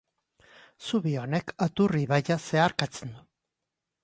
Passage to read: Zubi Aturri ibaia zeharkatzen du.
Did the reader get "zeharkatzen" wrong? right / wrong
right